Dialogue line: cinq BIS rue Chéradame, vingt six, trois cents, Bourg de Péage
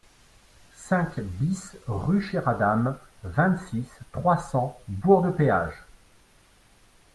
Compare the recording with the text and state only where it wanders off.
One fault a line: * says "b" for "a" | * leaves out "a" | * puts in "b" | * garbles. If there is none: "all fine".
all fine